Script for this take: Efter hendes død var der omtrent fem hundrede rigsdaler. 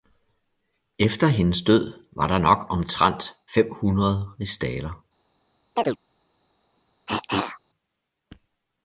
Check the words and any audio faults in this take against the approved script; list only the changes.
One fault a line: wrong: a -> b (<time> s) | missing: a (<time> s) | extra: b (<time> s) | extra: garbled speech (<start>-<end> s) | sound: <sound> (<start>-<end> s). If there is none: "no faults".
extra: nok (2.4 s)
sound: chirp (5.8-6.0 s)
sound: cough (7.1-7.6 s)